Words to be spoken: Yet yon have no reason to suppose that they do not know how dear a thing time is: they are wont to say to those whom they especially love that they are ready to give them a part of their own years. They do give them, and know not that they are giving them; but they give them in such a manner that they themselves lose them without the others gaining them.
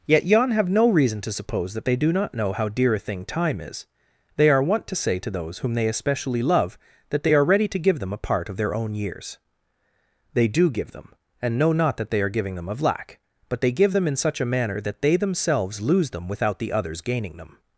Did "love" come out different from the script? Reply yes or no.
no